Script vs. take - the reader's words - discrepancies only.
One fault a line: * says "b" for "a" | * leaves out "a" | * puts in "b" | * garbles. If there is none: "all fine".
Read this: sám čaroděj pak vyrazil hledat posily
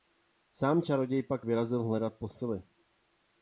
all fine